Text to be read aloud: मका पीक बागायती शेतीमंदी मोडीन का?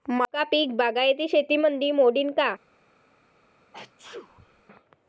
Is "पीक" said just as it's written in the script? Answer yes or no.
yes